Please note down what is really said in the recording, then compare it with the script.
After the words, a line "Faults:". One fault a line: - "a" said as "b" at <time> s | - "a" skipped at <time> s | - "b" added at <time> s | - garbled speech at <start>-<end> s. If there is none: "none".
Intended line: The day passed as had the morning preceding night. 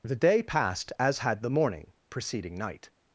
The day passed as had the morning preceding night.
Faults:
none